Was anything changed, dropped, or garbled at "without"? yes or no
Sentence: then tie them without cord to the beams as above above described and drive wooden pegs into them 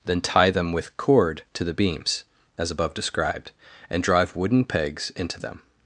yes